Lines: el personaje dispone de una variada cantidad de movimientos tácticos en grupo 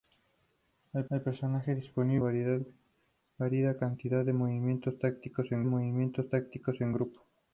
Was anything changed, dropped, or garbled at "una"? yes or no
yes